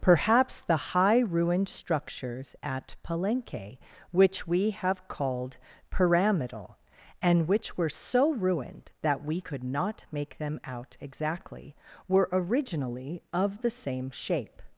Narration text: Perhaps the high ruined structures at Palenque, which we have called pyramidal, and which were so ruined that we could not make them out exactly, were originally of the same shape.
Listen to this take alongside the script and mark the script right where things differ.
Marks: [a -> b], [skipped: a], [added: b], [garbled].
Perhaps the high ruined structures at Palenque, which we have called pyramidal, and which were so ruined that we could not make them out exactly, were originally of the same shape.